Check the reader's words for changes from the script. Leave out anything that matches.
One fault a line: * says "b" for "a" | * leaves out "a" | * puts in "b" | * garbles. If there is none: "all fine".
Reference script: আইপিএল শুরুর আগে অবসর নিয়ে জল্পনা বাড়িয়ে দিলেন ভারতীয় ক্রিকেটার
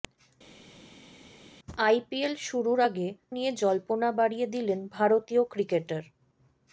* leaves out "অবসর"